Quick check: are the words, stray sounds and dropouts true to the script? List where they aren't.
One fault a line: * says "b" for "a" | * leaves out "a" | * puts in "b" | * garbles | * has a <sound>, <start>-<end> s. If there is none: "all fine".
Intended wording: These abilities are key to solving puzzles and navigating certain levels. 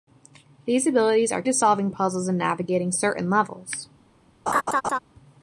* leaves out "key"
* has a laugh, 4.5-5.0 s